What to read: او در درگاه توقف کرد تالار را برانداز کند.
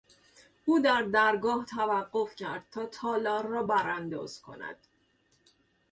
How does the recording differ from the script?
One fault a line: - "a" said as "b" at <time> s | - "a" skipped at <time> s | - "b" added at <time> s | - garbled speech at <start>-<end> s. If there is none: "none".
- "تا" added at 2.7 s